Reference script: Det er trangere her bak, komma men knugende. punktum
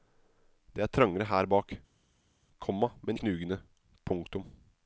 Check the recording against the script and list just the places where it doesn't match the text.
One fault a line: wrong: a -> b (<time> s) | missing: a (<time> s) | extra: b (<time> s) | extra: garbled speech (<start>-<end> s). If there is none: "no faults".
no faults